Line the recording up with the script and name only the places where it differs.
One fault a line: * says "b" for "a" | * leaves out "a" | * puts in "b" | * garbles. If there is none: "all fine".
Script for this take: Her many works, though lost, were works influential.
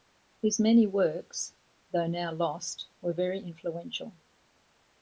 * says "His" for "Her"
* puts in "now"
* says "very" for "works"